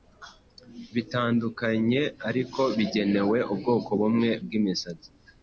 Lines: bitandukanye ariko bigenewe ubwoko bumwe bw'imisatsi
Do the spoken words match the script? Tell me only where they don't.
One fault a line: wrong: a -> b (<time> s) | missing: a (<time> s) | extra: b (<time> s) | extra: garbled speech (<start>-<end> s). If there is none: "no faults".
no faults